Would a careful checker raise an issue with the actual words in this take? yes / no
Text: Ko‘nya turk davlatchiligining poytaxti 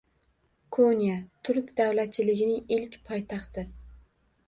yes